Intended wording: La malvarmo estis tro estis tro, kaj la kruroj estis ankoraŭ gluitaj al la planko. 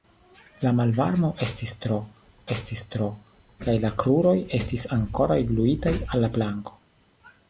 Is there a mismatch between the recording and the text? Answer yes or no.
no